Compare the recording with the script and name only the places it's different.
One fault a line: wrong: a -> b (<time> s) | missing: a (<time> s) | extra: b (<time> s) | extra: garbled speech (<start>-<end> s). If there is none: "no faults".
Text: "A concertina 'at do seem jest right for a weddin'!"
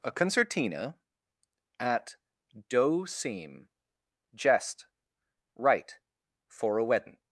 no faults